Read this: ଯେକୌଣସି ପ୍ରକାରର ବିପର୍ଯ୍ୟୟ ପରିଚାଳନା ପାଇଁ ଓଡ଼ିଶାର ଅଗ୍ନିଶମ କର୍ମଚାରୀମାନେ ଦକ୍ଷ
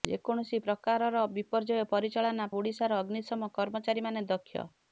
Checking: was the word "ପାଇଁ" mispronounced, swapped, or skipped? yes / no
yes